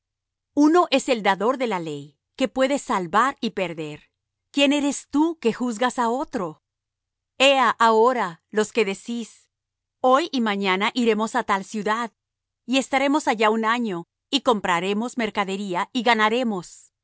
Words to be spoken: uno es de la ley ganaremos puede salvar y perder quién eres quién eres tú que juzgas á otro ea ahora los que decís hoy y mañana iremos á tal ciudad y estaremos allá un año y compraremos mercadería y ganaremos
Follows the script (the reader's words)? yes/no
no